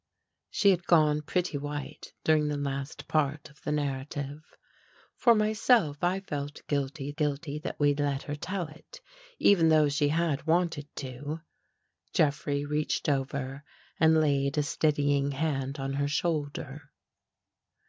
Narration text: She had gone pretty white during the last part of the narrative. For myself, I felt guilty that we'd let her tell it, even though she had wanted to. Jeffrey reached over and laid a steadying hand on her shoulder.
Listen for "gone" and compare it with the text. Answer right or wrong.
right